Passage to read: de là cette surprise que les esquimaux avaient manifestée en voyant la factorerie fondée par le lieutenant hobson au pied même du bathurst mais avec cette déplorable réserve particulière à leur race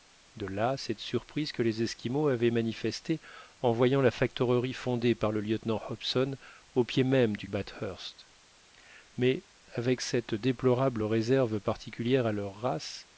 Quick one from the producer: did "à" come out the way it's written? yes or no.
yes